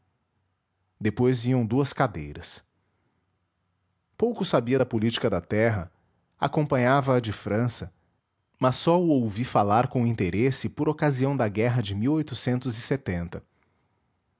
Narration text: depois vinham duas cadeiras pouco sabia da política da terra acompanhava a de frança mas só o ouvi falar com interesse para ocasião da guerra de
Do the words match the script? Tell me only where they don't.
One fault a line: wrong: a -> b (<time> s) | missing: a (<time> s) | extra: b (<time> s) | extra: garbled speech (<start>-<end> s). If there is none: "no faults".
wrong: para -> por (10.7 s)